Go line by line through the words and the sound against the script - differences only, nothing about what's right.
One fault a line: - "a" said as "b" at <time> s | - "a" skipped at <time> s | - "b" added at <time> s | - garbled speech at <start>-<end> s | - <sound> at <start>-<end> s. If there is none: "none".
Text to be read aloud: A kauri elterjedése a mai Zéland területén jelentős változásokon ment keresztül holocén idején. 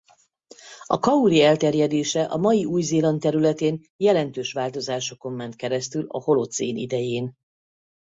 - "Új" added at 2.6 s
- "a" added at 6.1 s